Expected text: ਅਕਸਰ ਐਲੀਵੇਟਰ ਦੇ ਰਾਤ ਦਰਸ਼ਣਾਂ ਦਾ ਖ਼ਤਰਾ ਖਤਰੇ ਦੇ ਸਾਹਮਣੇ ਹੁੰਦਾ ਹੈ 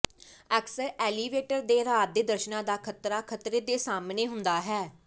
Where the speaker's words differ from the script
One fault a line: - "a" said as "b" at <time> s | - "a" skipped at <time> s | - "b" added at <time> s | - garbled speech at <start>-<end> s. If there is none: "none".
- "ਦੇ" added at 2.1 s